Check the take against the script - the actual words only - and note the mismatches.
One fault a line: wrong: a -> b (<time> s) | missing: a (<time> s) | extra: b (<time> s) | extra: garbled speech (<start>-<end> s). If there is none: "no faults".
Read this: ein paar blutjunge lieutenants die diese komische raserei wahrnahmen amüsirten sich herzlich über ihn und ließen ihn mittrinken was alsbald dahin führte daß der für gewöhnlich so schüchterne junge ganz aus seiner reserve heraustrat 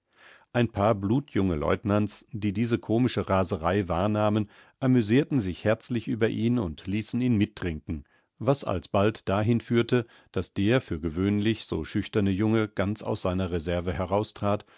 no faults